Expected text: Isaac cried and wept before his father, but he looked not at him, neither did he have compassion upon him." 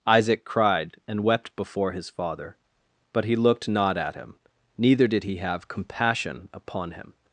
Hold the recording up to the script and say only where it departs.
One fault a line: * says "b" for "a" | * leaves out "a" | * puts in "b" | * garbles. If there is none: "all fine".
all fine